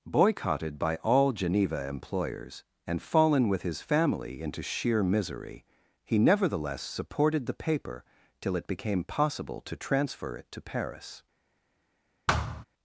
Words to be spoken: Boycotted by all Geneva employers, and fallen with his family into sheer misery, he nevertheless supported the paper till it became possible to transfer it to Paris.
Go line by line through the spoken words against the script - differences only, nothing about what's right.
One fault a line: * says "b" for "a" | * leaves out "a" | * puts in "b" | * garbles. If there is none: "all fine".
all fine